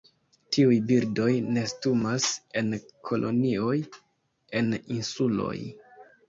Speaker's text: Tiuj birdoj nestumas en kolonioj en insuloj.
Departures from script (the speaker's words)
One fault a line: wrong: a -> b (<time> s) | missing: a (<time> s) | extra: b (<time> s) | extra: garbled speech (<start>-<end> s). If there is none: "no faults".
no faults